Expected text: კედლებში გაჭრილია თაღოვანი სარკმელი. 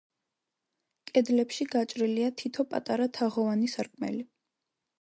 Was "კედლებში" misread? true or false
false